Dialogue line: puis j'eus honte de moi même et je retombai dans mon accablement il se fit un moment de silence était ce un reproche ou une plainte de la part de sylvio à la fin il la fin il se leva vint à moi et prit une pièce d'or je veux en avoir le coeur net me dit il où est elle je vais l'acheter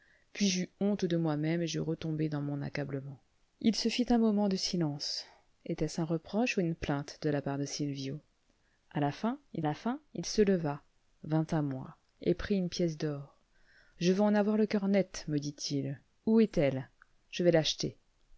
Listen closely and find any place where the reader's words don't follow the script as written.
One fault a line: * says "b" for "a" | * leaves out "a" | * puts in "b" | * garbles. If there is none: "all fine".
all fine